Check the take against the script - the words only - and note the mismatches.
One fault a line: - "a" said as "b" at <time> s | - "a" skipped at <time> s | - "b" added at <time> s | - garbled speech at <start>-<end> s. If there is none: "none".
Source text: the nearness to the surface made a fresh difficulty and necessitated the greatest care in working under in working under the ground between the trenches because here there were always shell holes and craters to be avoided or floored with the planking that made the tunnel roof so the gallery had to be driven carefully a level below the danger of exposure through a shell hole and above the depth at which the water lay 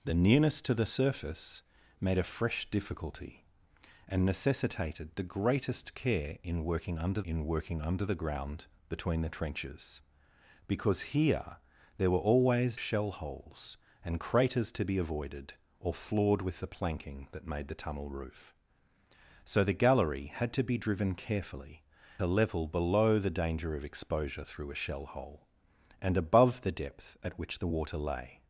none